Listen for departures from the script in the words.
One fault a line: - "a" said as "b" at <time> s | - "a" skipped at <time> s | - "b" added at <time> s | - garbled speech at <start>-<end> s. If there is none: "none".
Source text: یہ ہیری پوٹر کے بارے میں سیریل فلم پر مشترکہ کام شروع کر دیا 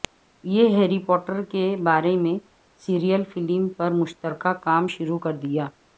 none